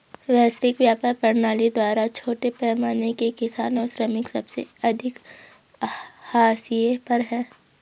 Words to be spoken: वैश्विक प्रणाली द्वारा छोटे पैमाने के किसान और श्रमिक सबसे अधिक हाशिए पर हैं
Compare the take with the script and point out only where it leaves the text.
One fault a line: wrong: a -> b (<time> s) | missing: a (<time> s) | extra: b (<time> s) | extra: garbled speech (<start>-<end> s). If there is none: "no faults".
extra: व्यापार (0.8 s)